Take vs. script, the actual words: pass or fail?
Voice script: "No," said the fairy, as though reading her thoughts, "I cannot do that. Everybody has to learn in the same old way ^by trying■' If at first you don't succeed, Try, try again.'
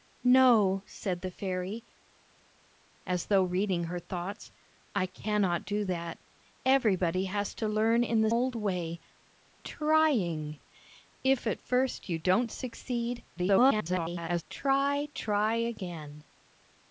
fail